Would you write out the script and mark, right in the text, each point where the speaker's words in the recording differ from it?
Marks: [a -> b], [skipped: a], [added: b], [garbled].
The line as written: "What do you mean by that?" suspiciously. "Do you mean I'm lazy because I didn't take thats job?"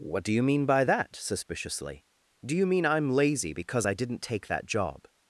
"What do you mean by that?" suspiciously. "Do you mean I'm lazy because I didn't take [thats -> that] job?"